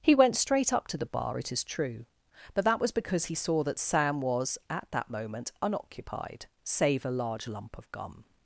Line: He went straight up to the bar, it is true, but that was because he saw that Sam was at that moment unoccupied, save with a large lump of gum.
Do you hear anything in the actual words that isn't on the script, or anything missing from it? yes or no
yes